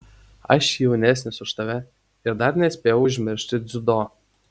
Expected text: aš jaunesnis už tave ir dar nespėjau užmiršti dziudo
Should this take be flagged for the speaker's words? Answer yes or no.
no